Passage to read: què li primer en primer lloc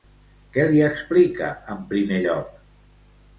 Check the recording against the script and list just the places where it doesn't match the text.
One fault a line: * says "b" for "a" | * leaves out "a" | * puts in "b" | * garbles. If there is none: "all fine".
* says "explica" for "primer"